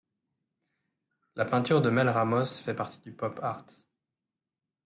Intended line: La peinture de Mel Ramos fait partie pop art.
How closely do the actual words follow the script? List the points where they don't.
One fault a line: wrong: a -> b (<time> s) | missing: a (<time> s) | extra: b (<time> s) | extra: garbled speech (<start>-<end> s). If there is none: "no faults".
extra: du (3.0 s)